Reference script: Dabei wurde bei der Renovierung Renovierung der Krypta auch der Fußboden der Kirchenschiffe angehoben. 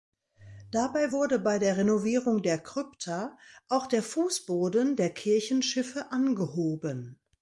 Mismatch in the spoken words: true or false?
true